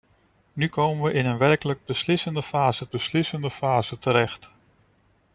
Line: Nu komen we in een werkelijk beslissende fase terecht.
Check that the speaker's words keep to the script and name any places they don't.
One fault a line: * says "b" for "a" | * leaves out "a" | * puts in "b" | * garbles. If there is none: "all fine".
* puts in "beslissende fase"